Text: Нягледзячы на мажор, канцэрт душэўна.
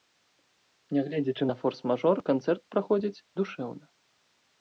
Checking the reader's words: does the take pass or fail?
fail